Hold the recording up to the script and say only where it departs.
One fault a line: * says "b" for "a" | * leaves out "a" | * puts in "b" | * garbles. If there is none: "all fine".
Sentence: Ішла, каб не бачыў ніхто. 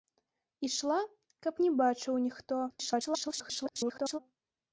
* garbles